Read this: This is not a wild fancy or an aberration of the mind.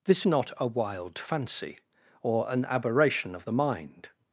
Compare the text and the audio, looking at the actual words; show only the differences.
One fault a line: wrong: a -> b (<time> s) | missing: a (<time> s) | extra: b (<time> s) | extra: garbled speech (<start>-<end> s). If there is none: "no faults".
missing: is (0.2 s)